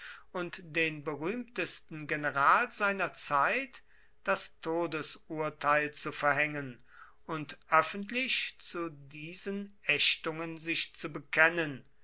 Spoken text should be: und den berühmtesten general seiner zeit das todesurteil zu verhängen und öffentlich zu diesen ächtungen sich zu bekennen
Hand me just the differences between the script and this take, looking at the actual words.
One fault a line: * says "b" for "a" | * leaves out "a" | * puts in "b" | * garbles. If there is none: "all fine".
all fine